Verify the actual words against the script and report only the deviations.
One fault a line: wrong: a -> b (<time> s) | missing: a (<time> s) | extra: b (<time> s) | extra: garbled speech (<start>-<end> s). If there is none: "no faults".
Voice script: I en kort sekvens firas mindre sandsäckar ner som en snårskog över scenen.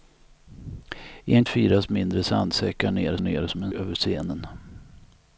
missing: kort sekvens (1.4 s)
extra: ner (3.2 s)
missing: snårskog (3.7 s)